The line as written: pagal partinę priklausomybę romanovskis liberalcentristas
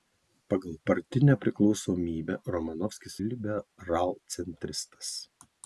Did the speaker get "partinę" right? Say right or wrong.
right